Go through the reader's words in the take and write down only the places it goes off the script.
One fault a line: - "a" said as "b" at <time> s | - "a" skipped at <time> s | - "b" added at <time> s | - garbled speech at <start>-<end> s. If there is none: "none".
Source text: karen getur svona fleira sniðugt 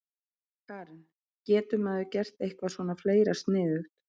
- "maður gert eitthvað" added at 1.9 s